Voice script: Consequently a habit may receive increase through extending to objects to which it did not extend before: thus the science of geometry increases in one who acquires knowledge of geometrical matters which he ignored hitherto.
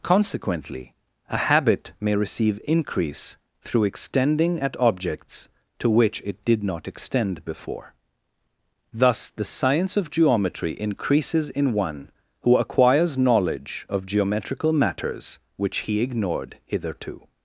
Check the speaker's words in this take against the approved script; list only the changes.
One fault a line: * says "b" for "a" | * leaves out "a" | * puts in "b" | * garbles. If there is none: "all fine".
* says "at" for "to"